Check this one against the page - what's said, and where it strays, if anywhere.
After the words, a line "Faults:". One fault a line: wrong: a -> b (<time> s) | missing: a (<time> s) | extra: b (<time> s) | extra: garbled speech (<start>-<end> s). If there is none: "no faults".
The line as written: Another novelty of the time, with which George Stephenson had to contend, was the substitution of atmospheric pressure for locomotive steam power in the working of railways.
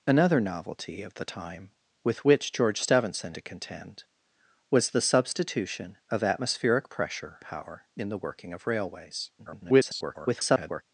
Another novelty of the time, with which George Stephenson to contend, was the substitution of atmospheric pressure power in the working of railways. [garbled]
Faults:
missing: had (3.3 s)
missing: for locomotive steam (7.4 s)
extra: garbled speech (9.4-10.8 s)